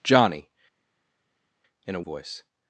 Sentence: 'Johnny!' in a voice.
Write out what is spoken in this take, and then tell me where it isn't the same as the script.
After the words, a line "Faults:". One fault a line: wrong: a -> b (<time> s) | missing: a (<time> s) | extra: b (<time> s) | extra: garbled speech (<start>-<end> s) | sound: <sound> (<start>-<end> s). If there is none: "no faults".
'Johnny!' in a voice.
Faults:
no faults